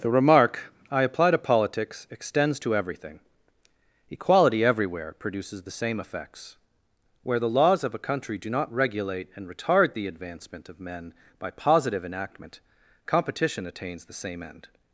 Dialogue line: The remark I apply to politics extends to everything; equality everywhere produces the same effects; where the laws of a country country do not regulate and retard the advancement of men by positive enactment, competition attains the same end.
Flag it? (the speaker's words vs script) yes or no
yes